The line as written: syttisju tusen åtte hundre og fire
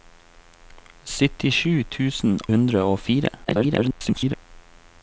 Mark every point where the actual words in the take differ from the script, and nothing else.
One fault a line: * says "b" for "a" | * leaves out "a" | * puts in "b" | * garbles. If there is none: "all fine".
* leaves out "åtte"
* garbles